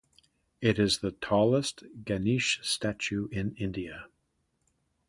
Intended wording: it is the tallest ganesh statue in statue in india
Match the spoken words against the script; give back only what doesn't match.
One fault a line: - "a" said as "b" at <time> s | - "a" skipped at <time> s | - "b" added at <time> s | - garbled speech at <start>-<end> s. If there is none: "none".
- "statue in" skipped at 3.5 s